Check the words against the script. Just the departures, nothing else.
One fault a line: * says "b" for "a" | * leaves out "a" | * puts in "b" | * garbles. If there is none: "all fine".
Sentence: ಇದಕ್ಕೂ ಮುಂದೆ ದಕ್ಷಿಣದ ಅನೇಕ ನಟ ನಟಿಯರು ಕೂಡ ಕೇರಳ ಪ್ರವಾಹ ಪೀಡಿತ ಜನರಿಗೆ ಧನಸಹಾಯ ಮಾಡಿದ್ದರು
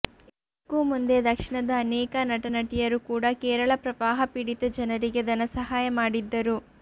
all fine